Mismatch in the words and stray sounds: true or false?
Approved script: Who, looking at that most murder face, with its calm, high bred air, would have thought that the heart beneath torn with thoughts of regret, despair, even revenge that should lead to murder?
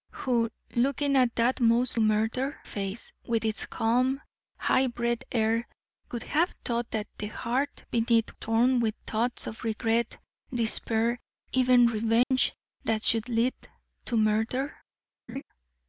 true